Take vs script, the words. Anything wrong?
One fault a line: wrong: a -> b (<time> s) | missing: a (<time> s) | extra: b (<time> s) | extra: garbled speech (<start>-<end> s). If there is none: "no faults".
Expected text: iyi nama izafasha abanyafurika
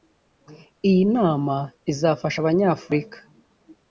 no faults